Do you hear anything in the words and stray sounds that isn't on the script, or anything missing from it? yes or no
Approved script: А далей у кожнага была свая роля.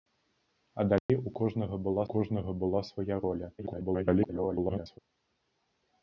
yes